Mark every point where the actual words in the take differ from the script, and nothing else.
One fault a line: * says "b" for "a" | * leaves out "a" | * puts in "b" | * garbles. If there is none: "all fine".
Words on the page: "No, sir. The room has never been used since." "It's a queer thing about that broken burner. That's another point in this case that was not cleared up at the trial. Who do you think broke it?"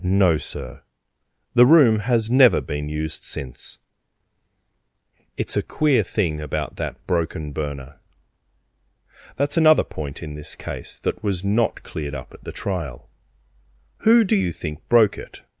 all fine